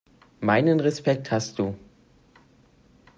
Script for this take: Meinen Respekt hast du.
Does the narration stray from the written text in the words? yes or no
no